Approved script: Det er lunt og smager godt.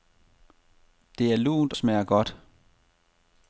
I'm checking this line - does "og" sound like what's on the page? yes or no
no